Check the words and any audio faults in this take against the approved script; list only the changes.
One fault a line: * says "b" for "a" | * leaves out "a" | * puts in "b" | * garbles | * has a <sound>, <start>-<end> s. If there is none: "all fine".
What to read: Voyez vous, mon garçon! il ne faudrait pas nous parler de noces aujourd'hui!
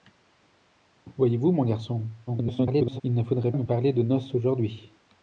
* garbles
* leaves out "pas"